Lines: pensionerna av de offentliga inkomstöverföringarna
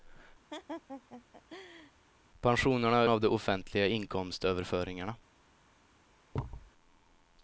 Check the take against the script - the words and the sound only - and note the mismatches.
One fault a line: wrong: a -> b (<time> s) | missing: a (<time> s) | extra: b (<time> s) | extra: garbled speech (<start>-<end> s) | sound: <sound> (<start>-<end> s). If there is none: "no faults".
sound: laugh (0.5-1.9 s)
sound: thud (6.3-6.7 s)